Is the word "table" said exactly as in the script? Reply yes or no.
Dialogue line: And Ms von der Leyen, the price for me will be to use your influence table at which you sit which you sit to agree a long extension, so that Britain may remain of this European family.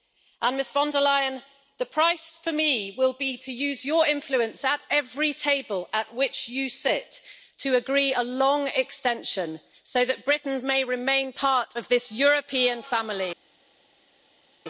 no